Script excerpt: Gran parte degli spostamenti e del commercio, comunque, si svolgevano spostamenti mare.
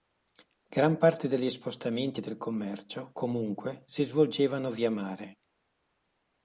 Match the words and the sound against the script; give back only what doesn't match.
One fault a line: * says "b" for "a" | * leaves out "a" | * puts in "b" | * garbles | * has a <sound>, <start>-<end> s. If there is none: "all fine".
* says "via" for "spostamenti"